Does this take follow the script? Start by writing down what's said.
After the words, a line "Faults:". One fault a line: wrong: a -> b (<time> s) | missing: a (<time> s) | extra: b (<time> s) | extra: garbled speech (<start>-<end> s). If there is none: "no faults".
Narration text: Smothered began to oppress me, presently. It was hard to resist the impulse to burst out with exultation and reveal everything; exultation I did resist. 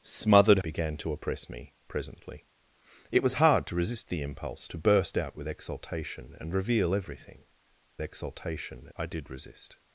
Smothered began to oppress me, presently. It was hard to resist the impulse to burst out with exultation and reveal everything; exultation I did resist.
Faults:
no faults